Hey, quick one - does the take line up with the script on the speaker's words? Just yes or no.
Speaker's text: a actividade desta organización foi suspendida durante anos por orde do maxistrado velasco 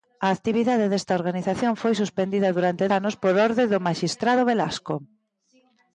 yes